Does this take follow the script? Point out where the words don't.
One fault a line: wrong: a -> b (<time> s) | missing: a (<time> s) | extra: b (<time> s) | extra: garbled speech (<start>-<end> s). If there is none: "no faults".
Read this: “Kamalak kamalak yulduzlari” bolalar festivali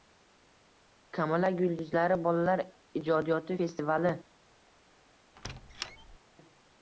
missing: kamalak (1.6 s)
extra: ijodiyoti (3.0 s)